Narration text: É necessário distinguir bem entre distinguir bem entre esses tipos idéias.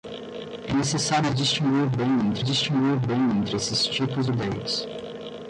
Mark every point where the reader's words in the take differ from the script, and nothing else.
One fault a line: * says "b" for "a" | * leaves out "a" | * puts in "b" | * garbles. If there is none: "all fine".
all fine